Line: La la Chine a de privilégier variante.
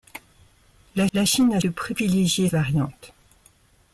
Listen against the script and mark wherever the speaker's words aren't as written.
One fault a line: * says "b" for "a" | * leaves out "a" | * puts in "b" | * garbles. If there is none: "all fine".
all fine